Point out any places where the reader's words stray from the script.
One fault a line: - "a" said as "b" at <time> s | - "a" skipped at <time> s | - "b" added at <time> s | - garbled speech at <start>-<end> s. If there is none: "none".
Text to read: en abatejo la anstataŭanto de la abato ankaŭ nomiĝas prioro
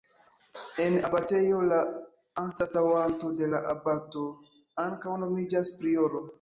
none